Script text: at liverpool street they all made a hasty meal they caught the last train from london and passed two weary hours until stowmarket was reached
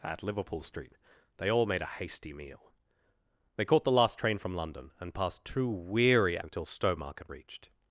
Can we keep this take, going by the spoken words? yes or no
no